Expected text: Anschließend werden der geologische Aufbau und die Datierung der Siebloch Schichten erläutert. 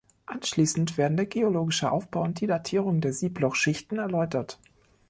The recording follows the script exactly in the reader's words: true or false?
true